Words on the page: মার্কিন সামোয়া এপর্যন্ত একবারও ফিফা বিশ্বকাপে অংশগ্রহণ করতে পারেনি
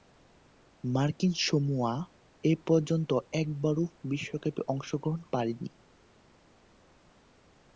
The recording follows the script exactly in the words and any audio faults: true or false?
false